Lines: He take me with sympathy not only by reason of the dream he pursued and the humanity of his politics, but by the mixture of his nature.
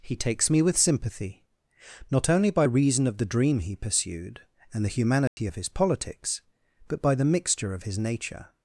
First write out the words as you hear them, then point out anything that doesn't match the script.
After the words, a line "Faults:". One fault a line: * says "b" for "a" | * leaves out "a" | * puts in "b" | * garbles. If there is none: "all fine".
He takes me with sympathy not only by reason of the dream he pursued and the humanity of his politics, but by the mixture of his nature.
Faults:
* says "takes" for "take"